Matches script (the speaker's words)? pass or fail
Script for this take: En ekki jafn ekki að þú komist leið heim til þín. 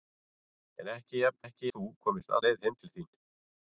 pass